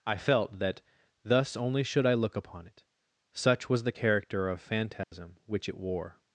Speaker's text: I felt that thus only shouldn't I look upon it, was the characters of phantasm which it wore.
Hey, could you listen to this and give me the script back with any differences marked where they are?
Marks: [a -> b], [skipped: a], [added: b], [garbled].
I felt that thus only [shouldn't -> should] I look upon it, [added: such] was the [characters -> character] of phantasm which it wore.